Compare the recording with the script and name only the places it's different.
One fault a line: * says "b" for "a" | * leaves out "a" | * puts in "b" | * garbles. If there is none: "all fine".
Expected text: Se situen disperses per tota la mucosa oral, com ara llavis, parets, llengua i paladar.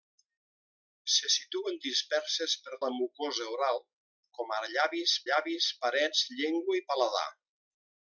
* leaves out "tota"
* puts in "llavis"